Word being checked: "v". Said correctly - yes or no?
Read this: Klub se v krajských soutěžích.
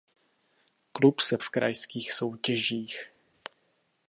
yes